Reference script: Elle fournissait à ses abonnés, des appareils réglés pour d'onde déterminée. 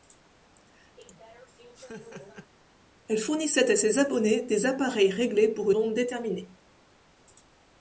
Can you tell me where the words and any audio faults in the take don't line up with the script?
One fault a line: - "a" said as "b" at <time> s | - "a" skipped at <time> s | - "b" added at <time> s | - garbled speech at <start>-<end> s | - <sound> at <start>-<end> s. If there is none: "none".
- laugh at 1.0-2.5 s